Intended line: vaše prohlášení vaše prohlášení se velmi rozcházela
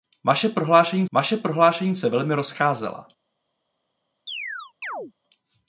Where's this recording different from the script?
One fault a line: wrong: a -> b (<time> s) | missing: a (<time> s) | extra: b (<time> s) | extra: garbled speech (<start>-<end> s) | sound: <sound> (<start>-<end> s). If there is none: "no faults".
sound: chirp (4.3-5.1 s)